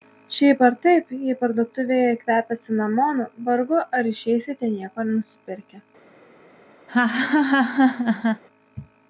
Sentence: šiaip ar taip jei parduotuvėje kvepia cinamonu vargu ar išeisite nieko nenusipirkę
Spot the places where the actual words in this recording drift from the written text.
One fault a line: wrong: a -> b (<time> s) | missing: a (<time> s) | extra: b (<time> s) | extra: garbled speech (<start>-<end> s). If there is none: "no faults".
no faults